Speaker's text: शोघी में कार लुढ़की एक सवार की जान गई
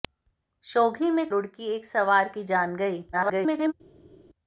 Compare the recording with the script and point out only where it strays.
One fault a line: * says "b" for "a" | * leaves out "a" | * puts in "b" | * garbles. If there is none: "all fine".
* leaves out "कार"
* garbles